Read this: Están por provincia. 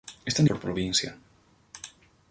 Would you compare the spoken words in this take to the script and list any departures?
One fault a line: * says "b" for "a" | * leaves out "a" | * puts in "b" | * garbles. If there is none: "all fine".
all fine